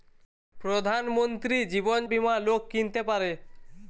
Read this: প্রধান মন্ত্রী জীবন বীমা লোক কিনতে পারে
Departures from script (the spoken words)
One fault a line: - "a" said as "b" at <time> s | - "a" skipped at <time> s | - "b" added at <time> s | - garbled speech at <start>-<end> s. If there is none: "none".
none